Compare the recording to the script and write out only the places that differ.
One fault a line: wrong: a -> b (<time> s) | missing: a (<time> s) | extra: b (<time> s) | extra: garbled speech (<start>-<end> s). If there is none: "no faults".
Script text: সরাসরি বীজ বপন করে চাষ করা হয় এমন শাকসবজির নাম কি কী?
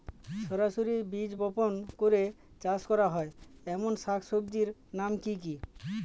no faults